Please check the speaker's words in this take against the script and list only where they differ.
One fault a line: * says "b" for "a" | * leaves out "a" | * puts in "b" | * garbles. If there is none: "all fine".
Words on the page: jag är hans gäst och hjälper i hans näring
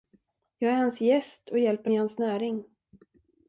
all fine